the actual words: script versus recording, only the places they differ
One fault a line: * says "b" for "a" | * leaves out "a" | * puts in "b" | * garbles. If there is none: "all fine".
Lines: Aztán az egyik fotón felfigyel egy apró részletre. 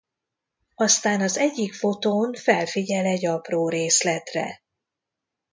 all fine